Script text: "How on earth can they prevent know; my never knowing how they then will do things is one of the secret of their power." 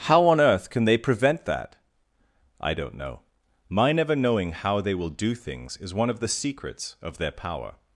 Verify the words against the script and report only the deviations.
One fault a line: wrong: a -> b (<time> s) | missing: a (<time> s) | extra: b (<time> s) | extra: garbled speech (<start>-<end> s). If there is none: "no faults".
extra: that I don't (1.4 s)
missing: then (5.0 s)
wrong: secret -> secrets (6.3 s)